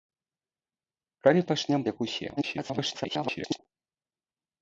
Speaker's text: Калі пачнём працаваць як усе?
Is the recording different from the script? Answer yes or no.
yes